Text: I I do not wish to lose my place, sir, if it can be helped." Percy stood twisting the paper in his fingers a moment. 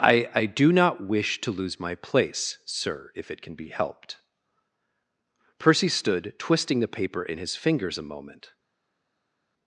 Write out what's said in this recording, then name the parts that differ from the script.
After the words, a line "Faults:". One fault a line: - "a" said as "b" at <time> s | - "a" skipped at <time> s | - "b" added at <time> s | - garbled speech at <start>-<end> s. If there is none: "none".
I I do not wish to lose my place, sir, if it can be helped." Percy stood twisting the paper in his fingers a moment.
Faults:
none